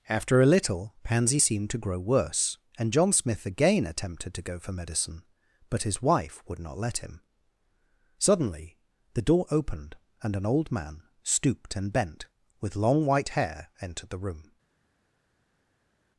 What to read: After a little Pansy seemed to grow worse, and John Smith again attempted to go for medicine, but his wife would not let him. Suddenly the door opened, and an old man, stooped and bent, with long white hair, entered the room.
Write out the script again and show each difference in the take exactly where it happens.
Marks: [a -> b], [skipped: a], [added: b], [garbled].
After a little Pansy seemed to grow worse, and John Smith again attempted to go for medicine, but his wife would not let him. Suddenly the door opened, and an old man, stooped and bent, with long white hair, entered the room.